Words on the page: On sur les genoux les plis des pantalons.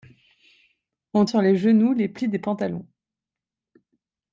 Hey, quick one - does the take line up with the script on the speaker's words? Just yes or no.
yes